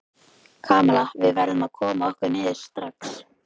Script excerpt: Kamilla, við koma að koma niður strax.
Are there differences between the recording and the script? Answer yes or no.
yes